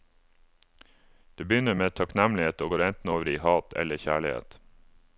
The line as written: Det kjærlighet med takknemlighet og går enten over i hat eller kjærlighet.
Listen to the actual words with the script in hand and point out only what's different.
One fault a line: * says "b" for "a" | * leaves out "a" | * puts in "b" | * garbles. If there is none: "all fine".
* says "begynner" for "kjærlighet"